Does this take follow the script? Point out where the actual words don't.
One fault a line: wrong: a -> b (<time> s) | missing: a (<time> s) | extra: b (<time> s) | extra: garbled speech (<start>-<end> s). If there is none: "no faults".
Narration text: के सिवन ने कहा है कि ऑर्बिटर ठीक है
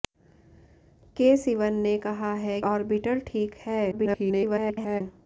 missing: कि (2.6 s)
extra: garbled speech (3.9-5.0 s)